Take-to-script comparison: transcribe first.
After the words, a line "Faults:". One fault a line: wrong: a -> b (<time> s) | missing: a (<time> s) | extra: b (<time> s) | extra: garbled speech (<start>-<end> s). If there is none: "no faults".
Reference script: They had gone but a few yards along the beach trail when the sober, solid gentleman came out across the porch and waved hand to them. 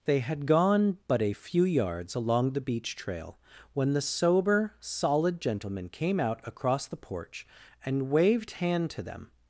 They had gone but a few yards along the beach trail when the sober, solid gentleman came out across the porch and waved hand to them.
Faults:
no faults